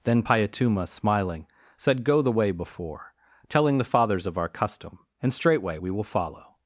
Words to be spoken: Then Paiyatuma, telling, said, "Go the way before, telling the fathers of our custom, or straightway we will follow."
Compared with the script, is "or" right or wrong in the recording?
wrong